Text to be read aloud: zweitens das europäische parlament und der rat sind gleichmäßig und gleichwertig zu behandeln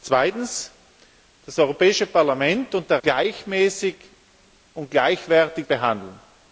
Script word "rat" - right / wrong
wrong